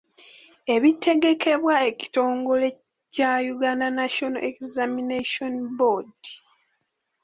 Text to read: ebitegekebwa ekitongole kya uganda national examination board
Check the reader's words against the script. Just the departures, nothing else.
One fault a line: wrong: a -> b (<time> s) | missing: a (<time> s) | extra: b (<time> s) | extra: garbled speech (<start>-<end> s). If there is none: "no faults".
no faults